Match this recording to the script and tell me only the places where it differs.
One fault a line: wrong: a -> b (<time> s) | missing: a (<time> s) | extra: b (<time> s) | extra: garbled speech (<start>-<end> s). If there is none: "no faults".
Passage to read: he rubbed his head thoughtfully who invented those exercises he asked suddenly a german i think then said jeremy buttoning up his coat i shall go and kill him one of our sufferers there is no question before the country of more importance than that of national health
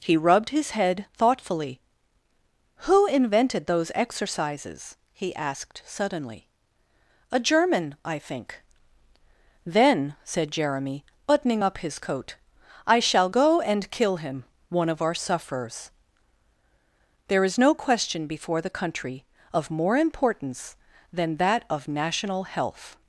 no faults